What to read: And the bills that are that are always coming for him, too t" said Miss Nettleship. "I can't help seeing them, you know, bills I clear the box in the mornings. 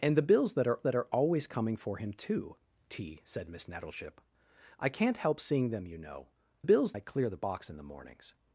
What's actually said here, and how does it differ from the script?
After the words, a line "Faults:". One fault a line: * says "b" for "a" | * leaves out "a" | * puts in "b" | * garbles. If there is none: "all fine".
And the bills that are that are always coming for him, too t" said Miss Nettleship. "I can't help seeing them, you know, bills I clear the box in the mornings.
Faults:
all fine